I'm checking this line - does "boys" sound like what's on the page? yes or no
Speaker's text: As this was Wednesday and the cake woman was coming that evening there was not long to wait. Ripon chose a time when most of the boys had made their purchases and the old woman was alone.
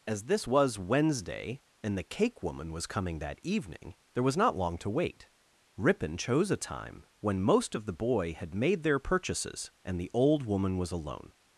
no